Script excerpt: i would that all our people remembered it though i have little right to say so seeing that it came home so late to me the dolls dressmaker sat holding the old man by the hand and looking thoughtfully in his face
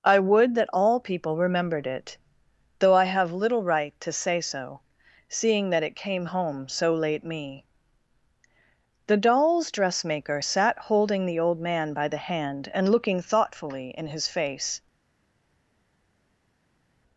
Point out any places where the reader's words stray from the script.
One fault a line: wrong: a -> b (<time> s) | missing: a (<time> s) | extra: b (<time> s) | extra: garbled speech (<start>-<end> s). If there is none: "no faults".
missing: our (1.0 s)
missing: to (7.2 s)